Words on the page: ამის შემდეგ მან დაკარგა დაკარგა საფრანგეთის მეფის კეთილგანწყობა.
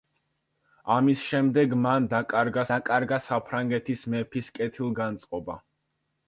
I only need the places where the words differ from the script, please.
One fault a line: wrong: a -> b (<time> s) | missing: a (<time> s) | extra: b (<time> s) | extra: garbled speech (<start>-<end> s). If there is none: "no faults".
no faults